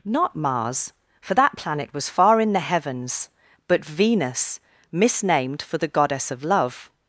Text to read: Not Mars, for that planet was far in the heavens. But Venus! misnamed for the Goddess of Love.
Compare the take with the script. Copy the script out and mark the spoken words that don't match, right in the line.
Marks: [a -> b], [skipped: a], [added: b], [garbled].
Not Mars, for that planet was far in the heavens. But Venus! misnamed for the Goddess of Love.